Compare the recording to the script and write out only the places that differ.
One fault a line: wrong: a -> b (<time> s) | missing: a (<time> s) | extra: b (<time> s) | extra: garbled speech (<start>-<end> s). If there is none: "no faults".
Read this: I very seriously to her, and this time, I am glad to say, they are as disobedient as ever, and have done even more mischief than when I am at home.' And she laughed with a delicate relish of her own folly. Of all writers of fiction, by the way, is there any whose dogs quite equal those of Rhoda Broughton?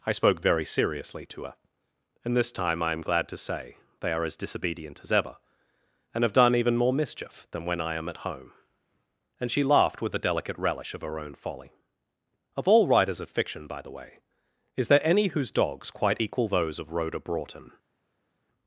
extra: spoke (0.1 s)